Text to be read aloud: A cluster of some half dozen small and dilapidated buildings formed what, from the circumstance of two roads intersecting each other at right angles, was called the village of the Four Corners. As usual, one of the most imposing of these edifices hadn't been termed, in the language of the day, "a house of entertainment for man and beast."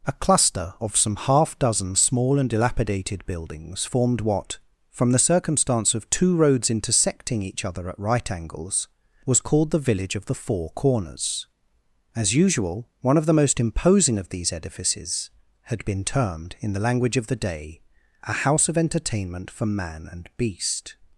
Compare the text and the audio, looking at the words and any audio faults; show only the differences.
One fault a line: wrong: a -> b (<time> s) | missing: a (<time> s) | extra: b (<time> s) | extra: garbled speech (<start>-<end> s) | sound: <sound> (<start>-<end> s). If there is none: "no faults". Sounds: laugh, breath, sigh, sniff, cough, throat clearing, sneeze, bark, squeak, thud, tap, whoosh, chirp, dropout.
wrong: hadn't -> had (15.6 s)